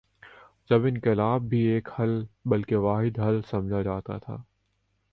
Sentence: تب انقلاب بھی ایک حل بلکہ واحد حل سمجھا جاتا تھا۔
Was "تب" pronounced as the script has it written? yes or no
no